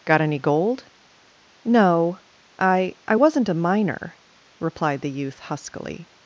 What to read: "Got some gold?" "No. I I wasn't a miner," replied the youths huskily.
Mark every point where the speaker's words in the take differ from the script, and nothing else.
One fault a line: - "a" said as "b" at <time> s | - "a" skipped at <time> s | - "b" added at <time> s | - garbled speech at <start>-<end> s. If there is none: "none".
- "some" said as "any" at 0.2 s
- "youths" said as "youth" at 5.1 s